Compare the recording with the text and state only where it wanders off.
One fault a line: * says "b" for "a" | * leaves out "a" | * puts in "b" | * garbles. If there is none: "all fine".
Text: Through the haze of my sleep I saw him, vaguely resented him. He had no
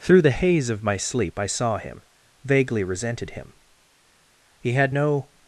all fine